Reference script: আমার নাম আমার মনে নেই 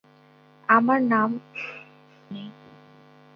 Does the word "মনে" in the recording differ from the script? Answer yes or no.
yes